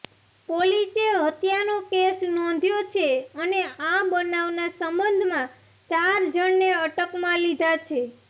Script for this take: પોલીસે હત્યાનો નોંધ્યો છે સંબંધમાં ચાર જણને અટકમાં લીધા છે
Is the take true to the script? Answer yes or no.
no